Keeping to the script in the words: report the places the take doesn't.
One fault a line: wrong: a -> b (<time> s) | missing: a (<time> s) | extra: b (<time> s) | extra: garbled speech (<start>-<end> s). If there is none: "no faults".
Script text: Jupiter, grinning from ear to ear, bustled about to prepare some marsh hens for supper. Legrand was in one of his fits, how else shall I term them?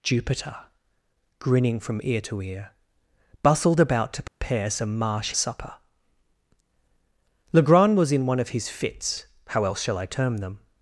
missing: hens for (5.3 s)